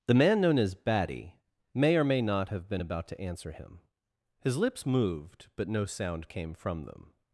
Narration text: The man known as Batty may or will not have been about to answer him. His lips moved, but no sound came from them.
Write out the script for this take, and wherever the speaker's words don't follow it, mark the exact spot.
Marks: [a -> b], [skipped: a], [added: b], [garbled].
The man known as Batty may or [will -> may] not have been about to answer him. His lips moved, but no sound came from them.